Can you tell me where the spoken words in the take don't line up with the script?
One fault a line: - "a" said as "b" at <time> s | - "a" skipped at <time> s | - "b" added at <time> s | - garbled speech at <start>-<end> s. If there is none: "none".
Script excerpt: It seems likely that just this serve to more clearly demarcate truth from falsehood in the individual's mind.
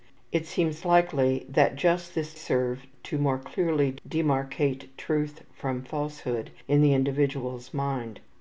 none